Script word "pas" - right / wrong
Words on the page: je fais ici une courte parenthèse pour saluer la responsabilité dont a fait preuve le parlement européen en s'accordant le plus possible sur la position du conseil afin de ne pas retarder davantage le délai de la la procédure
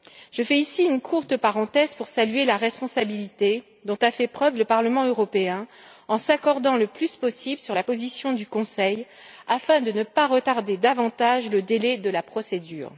right